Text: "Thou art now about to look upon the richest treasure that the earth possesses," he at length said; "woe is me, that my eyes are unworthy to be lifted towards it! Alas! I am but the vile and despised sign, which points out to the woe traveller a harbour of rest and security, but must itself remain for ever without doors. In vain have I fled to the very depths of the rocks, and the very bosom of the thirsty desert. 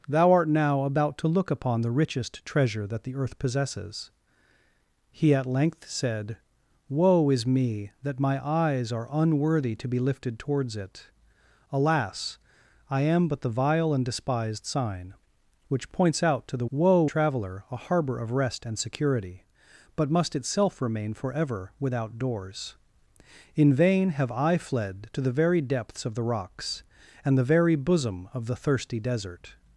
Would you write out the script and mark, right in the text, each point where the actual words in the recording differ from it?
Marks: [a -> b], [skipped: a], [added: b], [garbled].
"Thou art now about to look upon the richest treasure that the earth possesses," he at length said; "woe is me, that my eyes are unworthy to be lifted towards it! Alas! I am but the vile and despised sign, which points out to the woe traveller a harbour of rest and security, but must itself remain for ever without doors. In vain have I fled to the very depths of the rocks, and the very bosom of the thirsty desert.